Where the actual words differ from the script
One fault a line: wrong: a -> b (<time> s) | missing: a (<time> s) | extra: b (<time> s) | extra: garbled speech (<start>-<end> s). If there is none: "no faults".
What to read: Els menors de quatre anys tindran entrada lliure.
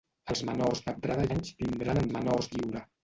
wrong: quatre -> entrada (1.0 s)
wrong: entrada -> menors (2.1 s)